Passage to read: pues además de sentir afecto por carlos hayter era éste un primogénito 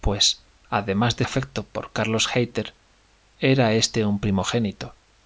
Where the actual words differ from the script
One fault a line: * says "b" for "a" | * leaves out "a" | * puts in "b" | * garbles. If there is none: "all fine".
* leaves out "sentir"